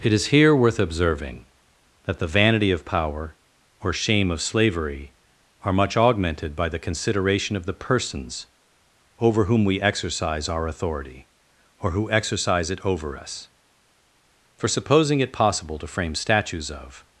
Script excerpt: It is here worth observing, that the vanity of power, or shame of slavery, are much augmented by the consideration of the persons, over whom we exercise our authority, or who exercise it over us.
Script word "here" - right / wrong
right